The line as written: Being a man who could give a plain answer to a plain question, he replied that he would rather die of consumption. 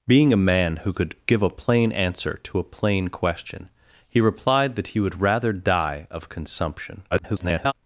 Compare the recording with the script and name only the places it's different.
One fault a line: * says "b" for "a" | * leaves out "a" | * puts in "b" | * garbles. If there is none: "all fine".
* garbles